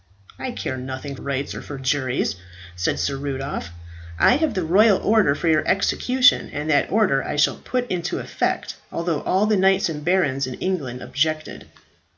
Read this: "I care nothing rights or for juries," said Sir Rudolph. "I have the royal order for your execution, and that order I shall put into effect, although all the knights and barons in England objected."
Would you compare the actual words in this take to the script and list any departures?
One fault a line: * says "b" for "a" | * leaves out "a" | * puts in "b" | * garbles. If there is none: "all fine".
all fine